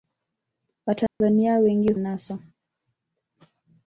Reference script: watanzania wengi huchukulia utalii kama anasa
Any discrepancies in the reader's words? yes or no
yes